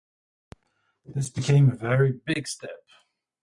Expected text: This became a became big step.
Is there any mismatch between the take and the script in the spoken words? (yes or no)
yes